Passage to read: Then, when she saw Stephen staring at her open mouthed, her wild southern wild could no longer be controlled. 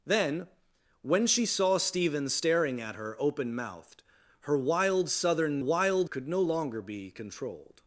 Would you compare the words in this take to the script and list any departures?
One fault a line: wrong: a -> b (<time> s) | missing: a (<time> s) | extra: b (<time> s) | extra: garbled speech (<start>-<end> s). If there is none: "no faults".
no faults